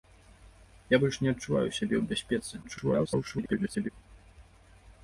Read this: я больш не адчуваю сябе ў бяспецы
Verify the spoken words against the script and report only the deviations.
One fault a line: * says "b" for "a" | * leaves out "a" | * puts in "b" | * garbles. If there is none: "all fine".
* garbles